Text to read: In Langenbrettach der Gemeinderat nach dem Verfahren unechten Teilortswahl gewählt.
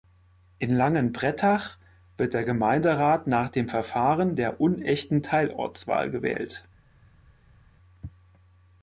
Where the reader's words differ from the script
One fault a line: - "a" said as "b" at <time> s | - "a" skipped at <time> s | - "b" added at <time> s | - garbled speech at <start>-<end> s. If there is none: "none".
- "wird" added at 2.2 s
- "der" added at 4.3 s